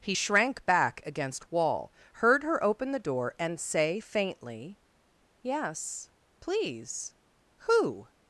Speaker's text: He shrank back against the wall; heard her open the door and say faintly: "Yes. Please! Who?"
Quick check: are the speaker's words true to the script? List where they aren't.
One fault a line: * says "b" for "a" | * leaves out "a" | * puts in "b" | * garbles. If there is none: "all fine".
* leaves out "the"